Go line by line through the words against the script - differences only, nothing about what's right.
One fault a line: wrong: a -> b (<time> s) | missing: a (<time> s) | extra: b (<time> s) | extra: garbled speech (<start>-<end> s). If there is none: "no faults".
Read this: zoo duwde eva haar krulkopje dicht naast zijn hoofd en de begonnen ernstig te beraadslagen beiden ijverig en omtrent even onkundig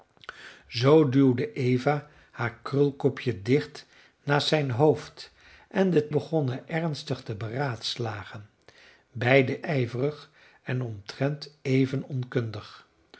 no faults